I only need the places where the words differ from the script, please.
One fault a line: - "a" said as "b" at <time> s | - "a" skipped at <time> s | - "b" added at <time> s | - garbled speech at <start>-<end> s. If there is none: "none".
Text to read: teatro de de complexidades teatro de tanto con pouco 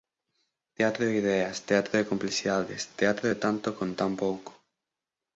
- "ideas teatro" added at 1.2 s
- "tan" added at 3.9 s